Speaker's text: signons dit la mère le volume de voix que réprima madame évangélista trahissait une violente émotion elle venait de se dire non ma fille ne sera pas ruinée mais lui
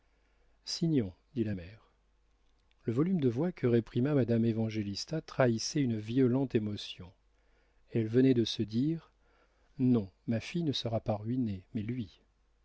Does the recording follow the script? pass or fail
pass